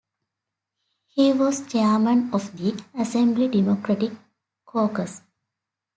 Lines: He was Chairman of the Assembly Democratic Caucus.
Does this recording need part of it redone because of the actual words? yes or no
no